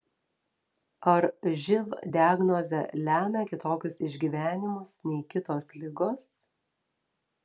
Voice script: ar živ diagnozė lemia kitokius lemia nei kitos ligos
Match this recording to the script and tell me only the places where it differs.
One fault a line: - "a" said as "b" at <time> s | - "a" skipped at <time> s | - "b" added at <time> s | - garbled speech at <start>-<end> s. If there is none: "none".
- "lemia" said as "išgyvenimus" at 4.1 s